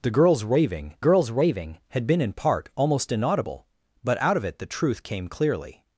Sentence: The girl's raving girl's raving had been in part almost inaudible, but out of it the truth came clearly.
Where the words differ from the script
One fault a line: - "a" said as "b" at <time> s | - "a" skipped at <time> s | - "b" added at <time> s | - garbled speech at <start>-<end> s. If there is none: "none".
none